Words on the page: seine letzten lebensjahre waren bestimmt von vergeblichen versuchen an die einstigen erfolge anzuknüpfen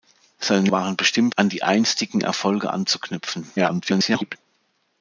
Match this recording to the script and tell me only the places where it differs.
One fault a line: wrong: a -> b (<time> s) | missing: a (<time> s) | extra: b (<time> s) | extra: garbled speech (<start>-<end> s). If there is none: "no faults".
missing: letzten lebensjahre (0.7 s)
missing: von vergeblichen versuchen (1.3 s)
extra: garbled speech (3.6-4.4 s)